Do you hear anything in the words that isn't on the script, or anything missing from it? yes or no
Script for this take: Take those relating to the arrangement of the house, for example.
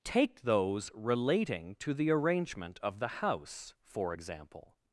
no